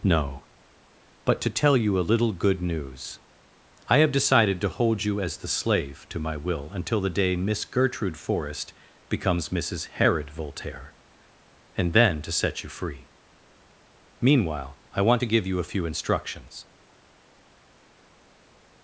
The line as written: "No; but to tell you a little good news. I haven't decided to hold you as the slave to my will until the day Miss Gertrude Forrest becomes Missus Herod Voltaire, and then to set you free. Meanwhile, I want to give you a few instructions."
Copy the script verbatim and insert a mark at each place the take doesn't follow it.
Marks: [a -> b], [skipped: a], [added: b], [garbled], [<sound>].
"No; but to tell you a little good news. I [haven't -> have] decided to hold you as the slave to my will until the day Miss Gertrude Forrest becomes Missus Herod Voltaire, and then to set you free. Meanwhile, I want to give you a few instructions."